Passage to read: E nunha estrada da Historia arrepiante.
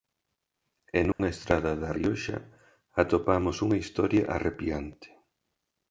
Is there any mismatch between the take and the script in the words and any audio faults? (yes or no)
yes